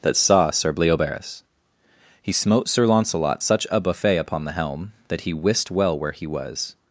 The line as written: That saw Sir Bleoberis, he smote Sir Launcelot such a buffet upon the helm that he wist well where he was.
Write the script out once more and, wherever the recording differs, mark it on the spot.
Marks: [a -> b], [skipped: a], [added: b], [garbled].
That saw Sir Bleoberis, he smote Sir Launcelot such a buffet upon the helm that he wist well where he was.